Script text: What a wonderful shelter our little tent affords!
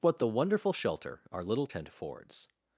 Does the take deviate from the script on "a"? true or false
true